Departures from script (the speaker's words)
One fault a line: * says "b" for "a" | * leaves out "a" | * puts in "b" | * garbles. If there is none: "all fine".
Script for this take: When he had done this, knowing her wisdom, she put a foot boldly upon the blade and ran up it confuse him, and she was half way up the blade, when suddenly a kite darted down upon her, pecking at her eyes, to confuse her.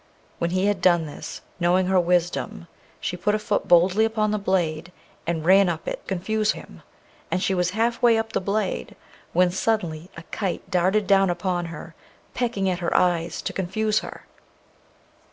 all fine